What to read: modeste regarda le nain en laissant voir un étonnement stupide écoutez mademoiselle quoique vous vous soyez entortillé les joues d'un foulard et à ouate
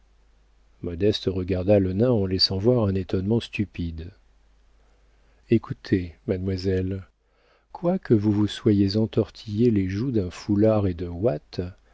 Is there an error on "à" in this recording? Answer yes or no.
yes